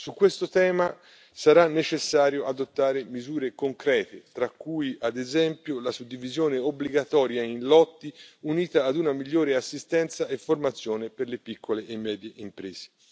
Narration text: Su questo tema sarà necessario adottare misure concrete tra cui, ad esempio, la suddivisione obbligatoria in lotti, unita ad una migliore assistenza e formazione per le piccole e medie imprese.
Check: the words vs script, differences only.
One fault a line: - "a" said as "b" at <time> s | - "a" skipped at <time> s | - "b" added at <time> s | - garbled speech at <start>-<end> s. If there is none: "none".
none